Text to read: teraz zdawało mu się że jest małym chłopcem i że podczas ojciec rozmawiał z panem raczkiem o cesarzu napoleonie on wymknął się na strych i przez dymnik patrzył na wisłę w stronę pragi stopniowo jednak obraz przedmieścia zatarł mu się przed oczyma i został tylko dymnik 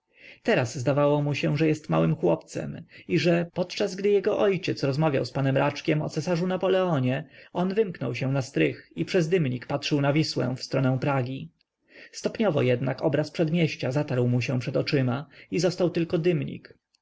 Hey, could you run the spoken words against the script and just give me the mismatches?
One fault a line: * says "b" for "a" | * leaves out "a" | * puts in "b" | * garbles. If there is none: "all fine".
* puts in "gdy jego"